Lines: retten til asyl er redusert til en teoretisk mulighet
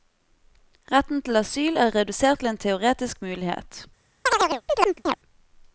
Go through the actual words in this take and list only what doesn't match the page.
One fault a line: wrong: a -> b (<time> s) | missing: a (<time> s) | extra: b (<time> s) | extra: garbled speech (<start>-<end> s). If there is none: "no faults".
no faults